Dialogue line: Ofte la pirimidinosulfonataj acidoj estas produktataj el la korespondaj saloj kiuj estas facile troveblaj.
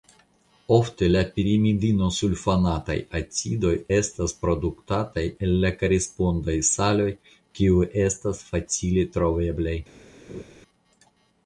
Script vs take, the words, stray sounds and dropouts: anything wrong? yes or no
yes